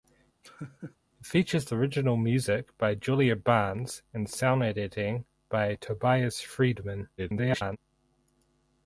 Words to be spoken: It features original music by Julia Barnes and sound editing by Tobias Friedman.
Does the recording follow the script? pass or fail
fail